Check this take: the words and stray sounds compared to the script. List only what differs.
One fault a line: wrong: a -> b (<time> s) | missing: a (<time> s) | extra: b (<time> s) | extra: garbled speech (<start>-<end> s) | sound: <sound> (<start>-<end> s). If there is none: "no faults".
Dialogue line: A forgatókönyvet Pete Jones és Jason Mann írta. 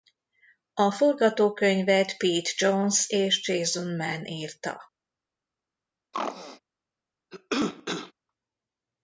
sound: throat clearing (6.1-6.6 s)
sound: cough (7.3-8.1 s)